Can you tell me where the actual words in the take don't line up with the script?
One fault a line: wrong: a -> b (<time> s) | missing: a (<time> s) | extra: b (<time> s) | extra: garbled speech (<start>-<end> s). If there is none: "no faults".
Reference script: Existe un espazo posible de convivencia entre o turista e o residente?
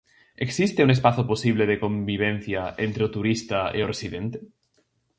no faults